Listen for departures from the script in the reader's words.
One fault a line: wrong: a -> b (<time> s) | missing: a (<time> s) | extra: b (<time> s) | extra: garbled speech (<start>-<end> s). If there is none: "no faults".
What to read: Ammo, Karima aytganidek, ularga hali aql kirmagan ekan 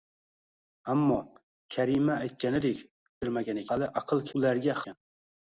wrong: ularga -> kirmagan (3.2 s)
wrong: kirmagan -> ularga (4.4 s)